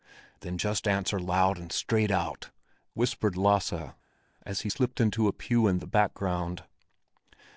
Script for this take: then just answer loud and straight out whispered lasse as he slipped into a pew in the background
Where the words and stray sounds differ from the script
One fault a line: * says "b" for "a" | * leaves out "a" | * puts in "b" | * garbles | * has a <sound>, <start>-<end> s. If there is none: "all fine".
all fine